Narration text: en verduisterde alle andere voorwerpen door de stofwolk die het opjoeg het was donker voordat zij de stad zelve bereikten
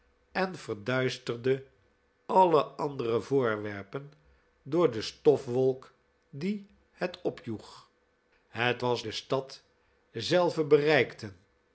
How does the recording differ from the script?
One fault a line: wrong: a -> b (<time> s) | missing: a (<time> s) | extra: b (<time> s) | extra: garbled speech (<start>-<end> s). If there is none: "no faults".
missing: donker voordat zij (9.0 s)